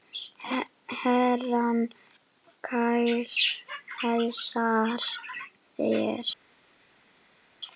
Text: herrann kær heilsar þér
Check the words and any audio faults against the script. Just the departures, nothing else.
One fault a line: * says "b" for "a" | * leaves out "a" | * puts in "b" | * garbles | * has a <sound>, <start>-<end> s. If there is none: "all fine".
all fine